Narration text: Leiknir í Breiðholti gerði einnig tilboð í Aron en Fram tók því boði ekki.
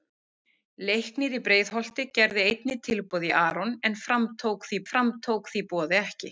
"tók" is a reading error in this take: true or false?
false